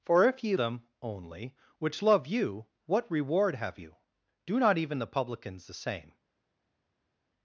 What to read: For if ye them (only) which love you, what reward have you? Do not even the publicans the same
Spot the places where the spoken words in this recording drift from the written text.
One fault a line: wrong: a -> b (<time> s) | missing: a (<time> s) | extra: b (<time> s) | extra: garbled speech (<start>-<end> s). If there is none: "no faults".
no faults